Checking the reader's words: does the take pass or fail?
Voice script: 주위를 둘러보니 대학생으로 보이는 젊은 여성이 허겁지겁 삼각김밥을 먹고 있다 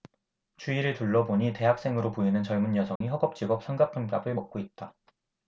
pass